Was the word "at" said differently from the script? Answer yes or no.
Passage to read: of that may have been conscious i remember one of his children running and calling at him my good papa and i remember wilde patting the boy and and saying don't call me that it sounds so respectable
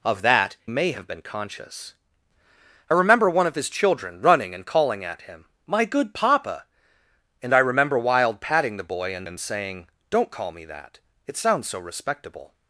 no